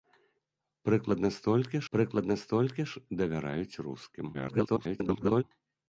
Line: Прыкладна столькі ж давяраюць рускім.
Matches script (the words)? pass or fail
fail